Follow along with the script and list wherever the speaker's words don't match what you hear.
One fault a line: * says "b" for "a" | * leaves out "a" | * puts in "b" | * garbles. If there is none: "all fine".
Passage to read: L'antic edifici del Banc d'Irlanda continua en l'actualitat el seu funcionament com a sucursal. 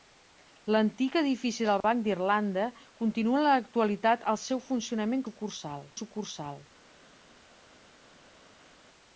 * says "sucursal" for "com"